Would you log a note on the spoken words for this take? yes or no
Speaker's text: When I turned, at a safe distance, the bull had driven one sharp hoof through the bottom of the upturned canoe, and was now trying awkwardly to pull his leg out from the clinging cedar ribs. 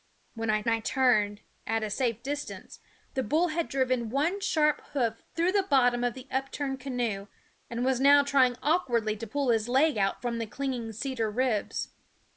yes